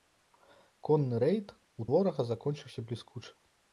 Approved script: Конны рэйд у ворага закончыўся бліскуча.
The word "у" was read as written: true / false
true